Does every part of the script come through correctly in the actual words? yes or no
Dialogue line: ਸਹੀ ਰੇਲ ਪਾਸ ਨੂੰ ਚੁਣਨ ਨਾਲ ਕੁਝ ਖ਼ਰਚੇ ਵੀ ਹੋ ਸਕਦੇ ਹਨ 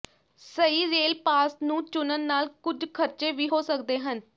yes